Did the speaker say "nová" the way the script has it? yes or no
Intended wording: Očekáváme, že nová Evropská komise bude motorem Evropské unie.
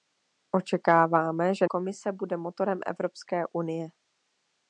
no